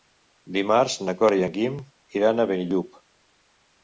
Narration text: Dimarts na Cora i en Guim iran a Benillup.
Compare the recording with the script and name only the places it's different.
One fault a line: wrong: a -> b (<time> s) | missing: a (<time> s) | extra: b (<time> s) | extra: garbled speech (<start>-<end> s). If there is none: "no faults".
no faults